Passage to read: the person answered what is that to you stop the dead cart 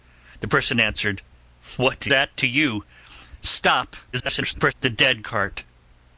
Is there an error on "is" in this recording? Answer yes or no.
yes